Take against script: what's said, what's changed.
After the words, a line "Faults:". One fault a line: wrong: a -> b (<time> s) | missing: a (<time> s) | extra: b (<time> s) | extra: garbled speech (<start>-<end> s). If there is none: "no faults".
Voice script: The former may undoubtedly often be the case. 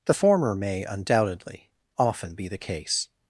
The former may undoubtedly often be the case.
Faults:
no faults